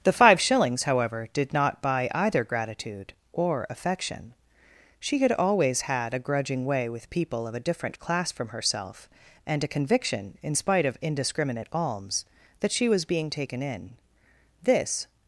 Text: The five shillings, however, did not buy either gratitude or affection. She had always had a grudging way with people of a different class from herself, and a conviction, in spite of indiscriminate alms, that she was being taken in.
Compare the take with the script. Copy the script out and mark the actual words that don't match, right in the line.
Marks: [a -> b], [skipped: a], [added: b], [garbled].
The five shillings, however, did not buy either gratitude or affection. She had always had a grudging way with people of a different class from herself, and a conviction, in spite of indiscriminate alms, that she was being taken in. [added: This]